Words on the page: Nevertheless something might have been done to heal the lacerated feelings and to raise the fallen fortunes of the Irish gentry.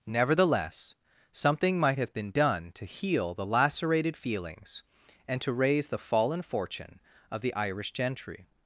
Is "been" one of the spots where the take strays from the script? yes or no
no